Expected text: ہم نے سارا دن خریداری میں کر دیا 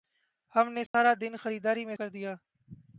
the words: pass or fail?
pass